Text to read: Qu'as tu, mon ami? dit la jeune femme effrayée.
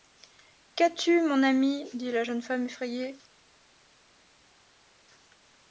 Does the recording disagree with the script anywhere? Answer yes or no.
no